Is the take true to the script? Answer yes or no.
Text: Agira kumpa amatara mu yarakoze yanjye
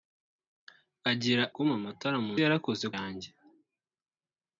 yes